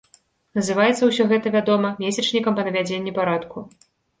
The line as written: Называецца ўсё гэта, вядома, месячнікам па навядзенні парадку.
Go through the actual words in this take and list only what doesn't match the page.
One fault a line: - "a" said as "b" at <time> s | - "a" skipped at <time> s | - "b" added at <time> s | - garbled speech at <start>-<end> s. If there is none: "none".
none